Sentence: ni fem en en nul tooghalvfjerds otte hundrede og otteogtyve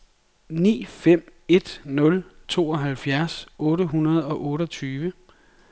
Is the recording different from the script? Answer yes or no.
yes